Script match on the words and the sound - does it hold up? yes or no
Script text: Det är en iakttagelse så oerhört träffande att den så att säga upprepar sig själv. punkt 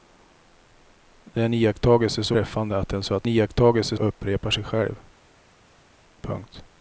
no